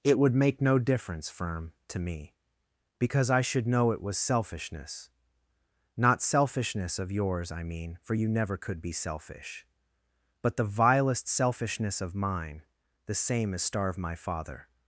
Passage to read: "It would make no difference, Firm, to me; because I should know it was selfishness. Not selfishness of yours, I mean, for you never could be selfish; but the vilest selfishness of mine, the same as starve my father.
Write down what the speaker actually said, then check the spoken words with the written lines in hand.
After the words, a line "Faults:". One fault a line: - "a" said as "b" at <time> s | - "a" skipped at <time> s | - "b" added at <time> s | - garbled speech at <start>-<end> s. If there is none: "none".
"It would make no difference, Firm, to me; because I should know it was selfishness. Not selfishness of yours, I mean, for you never could be selfish; but the vilest selfishness of mine, the same as starve my father.
Faults:
none